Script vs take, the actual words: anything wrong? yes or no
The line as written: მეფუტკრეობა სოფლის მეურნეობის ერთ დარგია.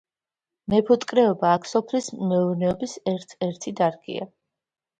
yes